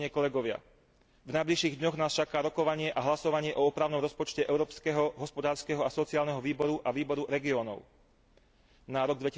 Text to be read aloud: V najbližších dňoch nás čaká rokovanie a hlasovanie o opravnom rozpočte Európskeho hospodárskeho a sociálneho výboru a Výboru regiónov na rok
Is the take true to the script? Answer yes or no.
yes